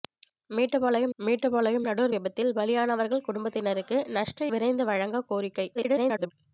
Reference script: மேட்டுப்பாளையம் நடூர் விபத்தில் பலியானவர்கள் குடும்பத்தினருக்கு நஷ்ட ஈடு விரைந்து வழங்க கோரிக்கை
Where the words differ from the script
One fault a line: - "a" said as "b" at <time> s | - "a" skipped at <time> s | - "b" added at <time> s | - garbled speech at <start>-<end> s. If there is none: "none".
- "மேட்டுப்பாளையம்" added at 1.2 s
- "ஈடு" skipped at 4.5 s
- garbled speech at 5.7-6.3 s